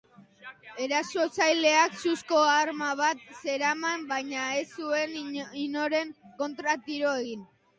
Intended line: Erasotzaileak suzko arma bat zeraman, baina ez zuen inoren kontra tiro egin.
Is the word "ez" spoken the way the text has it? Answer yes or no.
yes